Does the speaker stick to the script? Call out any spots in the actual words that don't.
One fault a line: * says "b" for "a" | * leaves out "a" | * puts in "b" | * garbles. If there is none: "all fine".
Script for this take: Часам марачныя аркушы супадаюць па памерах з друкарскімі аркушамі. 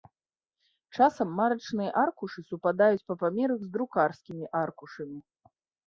all fine